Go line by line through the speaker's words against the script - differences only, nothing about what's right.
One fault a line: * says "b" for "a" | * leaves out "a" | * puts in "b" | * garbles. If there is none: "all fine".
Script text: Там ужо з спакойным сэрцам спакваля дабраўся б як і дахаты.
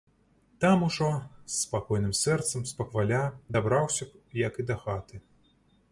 all fine